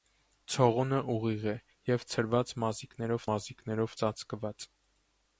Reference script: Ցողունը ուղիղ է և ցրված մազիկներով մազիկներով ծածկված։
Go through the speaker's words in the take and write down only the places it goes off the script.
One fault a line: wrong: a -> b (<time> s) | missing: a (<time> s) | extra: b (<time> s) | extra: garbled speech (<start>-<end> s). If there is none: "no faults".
no faults